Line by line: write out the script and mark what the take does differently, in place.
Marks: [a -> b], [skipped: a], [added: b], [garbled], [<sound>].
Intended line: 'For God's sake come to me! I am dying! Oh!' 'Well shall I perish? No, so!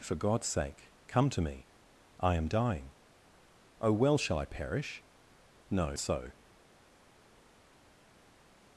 'For God's sake come to me! I am dying! Oh!' 'Well shall I perish? No, so!